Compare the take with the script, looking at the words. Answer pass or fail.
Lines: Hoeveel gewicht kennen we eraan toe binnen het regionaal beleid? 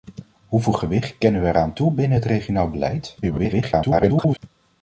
fail